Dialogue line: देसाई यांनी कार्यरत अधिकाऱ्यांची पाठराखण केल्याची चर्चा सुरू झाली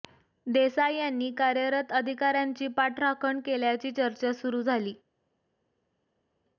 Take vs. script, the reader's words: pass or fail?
pass